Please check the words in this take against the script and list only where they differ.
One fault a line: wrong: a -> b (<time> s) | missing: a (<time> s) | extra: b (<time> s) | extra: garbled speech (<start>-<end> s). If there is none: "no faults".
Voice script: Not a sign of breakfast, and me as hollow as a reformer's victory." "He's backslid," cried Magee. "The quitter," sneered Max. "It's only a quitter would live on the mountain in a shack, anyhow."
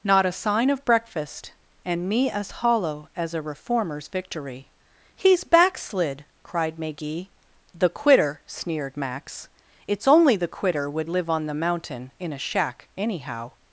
wrong: a -> the (10.3 s)